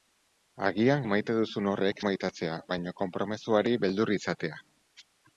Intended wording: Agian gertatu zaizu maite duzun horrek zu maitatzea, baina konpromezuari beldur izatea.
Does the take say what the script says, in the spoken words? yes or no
no